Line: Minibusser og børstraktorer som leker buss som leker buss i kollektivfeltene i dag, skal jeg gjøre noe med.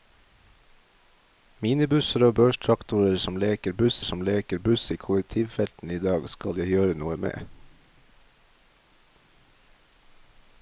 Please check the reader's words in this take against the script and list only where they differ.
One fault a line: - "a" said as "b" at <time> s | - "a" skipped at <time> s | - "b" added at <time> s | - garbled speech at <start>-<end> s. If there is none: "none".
none